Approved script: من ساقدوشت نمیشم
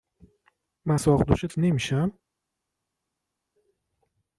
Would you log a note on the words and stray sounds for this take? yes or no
no